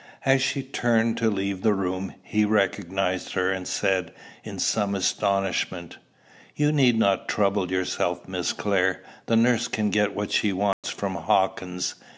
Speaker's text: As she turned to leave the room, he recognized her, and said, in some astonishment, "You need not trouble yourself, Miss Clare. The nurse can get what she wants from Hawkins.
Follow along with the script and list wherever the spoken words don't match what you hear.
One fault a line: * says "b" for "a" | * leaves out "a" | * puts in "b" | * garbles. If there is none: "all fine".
all fine